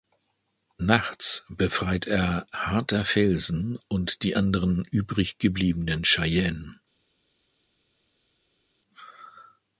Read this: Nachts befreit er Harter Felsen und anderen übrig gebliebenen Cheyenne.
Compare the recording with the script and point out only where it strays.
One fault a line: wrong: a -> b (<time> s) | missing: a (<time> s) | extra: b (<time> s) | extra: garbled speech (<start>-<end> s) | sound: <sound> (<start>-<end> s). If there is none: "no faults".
extra: die (4.2 s)